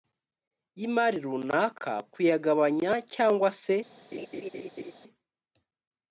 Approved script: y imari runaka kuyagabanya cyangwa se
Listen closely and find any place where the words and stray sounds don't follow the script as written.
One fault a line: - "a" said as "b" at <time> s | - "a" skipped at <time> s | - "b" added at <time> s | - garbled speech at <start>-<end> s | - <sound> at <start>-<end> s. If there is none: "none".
- laugh at 4.1-4.9 s